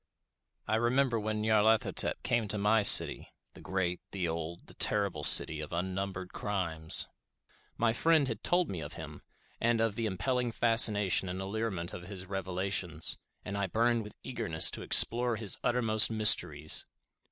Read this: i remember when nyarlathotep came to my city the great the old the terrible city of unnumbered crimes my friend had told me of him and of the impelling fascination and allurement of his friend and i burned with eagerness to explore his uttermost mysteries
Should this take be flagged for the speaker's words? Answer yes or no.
yes